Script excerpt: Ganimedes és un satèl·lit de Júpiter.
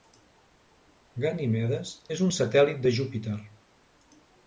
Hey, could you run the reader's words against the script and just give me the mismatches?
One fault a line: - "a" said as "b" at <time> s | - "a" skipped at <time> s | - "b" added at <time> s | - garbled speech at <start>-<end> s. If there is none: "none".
none